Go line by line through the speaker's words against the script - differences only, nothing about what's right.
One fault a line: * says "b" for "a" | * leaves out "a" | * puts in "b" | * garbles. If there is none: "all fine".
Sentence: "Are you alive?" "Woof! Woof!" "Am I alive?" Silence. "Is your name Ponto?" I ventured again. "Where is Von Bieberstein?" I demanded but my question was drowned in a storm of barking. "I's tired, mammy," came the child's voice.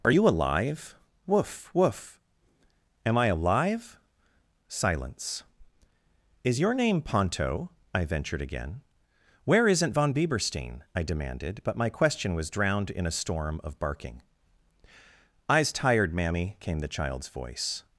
* says "isn't" for "is"